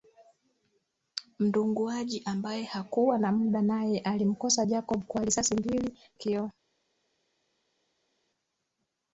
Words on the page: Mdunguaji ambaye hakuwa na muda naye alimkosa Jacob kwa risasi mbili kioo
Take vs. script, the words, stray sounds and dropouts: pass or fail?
pass